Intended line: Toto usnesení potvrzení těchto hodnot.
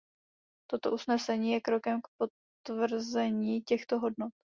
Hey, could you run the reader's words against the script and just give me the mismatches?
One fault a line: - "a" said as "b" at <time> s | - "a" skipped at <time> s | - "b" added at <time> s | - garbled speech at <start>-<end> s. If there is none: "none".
- "je krokem k" added at 1.5 s